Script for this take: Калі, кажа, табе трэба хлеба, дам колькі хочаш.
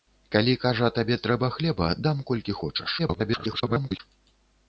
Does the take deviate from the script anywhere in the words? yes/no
yes